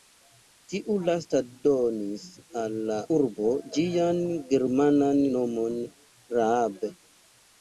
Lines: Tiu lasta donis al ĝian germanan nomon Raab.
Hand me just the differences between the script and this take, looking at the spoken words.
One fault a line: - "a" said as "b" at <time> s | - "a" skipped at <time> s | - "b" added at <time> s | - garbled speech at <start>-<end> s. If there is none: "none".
- "la urbo" added at 2.9 s